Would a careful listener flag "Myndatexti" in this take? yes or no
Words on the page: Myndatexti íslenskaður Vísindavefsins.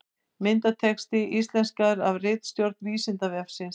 no